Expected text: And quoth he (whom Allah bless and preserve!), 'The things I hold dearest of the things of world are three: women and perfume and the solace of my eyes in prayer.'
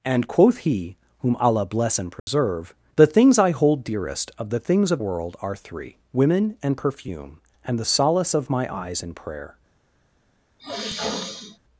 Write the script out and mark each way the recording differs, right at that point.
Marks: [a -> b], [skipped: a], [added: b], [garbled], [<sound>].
And quoth he (whom Allah bless and preserve!), [dropout] 'The things I hold dearest of the things of world are three: women and perfume and the solace of my eyes in prayer.' [sniff]